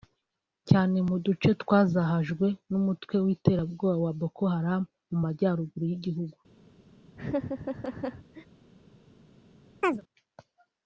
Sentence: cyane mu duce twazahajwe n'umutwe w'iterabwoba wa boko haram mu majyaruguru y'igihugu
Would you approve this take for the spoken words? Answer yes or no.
yes